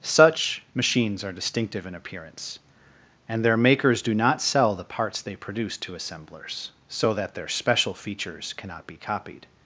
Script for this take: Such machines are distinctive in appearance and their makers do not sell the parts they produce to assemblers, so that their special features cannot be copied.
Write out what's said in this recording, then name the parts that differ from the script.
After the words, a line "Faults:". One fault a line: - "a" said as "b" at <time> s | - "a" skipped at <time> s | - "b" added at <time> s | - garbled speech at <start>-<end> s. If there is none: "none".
Such machines are distinctive in appearance and their makers do not sell the parts they produce to assemblers, so that their special features cannot be copied.
Faults:
none